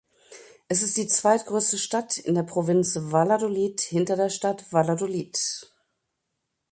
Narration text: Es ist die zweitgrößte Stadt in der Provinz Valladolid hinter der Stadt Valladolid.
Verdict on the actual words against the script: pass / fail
pass